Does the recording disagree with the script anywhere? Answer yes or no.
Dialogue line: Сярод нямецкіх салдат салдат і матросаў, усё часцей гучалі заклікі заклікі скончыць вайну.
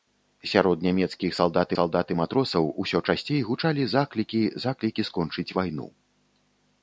no